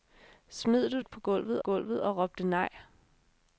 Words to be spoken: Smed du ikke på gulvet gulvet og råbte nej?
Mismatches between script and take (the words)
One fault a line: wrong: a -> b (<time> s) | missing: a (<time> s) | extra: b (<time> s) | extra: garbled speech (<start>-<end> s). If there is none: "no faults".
no faults